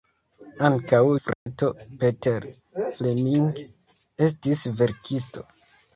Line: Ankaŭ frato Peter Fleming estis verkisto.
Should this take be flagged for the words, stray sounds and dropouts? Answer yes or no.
yes